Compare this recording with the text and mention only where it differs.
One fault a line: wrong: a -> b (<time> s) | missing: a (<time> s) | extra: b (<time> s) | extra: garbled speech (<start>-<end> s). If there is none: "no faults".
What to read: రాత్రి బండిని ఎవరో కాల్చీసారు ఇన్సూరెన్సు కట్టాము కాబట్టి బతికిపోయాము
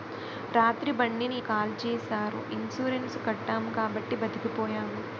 missing: ఎవరో (1.4 s)